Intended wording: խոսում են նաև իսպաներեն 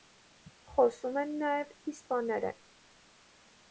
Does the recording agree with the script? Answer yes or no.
yes